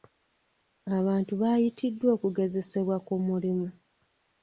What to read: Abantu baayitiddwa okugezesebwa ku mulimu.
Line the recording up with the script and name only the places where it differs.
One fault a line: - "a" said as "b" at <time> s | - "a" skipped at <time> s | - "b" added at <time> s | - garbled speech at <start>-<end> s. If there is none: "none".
none